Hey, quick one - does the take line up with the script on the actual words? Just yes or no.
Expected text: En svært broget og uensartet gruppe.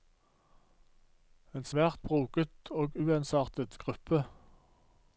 yes